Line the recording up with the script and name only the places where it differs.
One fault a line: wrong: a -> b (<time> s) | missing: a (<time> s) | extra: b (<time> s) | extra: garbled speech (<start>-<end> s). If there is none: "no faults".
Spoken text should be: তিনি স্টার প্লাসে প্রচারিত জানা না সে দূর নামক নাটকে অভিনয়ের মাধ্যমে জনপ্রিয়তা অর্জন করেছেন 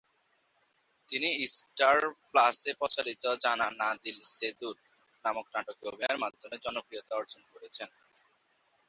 extra: দিল (4.0 s)